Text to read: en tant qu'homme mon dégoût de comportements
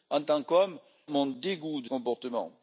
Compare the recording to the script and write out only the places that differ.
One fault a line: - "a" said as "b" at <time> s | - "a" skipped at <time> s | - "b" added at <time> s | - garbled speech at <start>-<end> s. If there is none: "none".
none